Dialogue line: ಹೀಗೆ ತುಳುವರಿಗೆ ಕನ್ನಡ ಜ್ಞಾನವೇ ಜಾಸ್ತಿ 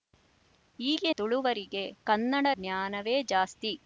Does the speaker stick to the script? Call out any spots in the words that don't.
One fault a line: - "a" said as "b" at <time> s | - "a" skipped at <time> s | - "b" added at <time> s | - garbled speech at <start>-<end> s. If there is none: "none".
none